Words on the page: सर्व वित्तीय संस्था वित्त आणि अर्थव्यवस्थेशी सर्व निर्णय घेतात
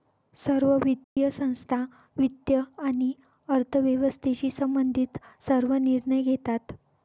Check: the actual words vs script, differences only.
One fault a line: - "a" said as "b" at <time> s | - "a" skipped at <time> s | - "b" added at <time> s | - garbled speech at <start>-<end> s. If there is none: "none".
- "संबंधित" added at 4.5 s